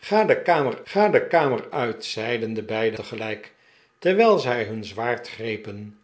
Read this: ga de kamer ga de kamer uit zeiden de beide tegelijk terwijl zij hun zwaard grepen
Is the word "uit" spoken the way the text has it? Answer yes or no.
yes